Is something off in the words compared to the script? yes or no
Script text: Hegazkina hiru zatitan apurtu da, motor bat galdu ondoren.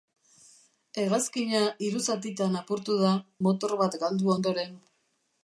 no